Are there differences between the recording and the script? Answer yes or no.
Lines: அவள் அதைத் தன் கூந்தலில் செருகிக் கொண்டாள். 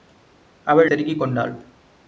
yes